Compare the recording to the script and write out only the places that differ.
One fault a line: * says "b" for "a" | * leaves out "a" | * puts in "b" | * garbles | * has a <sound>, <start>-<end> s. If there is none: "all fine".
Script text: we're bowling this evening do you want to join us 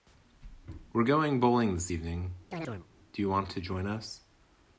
* puts in "going"
* has a chirp, 2.5-2.9 s